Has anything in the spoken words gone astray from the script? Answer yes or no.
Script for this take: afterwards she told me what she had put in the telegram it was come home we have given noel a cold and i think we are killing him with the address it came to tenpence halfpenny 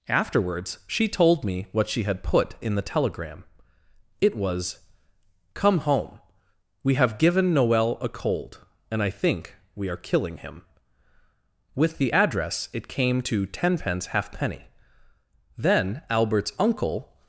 yes